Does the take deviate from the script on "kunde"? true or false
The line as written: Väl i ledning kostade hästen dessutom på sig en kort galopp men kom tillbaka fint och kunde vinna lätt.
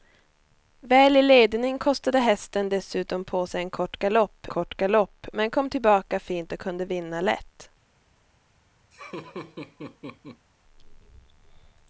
false